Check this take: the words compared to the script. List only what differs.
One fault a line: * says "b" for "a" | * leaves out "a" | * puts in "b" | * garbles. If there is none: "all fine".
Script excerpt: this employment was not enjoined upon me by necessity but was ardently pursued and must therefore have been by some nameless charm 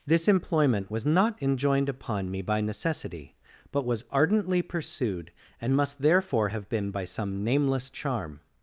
all fine